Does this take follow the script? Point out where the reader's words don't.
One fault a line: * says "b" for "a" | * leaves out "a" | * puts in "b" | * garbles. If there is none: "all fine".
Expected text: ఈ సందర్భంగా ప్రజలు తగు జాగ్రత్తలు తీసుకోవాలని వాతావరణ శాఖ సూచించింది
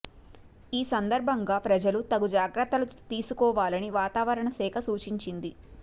all fine